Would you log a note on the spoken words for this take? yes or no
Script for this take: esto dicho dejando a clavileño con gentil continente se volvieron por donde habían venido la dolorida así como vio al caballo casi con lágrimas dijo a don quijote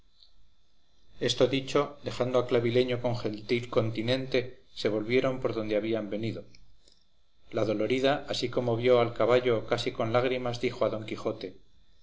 no